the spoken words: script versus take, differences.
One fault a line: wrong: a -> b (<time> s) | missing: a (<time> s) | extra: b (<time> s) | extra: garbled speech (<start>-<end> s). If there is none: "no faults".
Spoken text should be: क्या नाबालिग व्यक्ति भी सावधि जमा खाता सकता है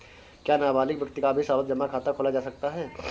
extra: का (1.2 s)
extra: खोला जा (2.1 s)